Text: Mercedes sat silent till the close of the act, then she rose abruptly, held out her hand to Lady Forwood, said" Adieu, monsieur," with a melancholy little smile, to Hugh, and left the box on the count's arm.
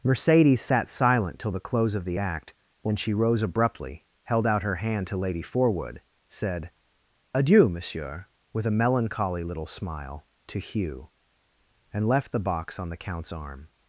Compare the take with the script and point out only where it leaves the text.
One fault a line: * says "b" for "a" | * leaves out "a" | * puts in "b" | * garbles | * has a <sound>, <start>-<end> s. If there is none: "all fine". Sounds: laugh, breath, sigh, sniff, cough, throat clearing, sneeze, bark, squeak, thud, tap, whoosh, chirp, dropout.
* says "when" for "then"